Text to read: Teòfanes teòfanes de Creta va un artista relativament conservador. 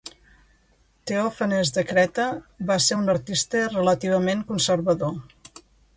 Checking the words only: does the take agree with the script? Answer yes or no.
no